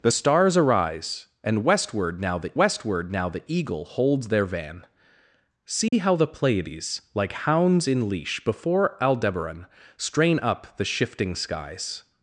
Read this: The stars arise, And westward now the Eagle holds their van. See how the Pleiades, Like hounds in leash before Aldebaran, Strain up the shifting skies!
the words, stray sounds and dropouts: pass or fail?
fail